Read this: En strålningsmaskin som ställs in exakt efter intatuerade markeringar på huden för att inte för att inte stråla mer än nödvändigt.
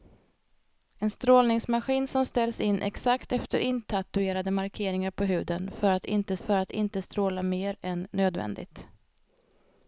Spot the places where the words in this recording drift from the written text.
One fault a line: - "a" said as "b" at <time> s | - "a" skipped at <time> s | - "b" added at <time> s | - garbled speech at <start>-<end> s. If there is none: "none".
none